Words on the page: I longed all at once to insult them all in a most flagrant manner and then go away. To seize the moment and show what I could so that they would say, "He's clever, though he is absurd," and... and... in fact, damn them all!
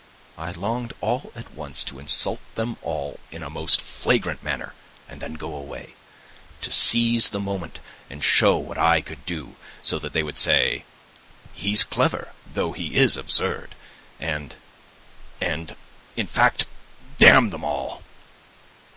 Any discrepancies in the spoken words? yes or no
yes